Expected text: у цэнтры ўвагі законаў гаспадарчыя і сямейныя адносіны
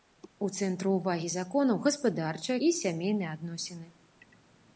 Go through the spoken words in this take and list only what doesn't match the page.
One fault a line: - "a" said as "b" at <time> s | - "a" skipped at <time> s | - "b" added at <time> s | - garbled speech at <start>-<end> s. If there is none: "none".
none